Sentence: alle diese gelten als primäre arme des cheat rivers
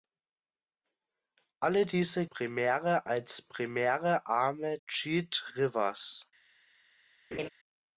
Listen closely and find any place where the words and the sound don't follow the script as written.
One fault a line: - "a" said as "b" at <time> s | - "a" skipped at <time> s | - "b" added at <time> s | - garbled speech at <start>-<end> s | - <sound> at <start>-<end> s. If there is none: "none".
- "gelten" said as "primäre" at 2.2 s
- "des" skipped at 4.8 s
- laugh at 7.3-7.5 s